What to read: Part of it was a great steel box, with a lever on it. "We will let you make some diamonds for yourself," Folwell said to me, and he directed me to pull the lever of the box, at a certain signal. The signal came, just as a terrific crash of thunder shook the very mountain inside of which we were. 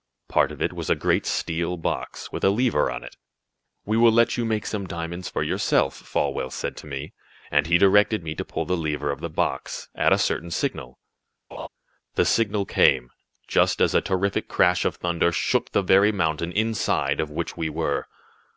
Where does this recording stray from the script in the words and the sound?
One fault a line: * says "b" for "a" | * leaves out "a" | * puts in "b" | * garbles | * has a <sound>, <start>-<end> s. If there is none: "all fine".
* has a laugh, 11.5-11.7 s